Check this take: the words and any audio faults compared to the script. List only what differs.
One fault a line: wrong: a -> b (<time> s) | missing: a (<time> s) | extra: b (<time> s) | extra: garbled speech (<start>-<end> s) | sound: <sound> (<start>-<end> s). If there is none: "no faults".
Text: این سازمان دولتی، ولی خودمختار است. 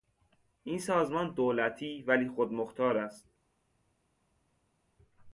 no faults